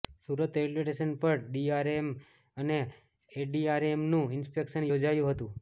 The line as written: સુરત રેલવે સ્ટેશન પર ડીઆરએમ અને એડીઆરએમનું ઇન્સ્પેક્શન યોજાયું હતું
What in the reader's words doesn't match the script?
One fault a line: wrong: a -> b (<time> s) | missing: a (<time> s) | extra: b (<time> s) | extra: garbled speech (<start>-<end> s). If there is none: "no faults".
no faults